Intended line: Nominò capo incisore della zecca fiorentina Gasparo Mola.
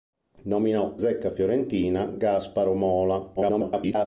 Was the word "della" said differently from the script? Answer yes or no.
yes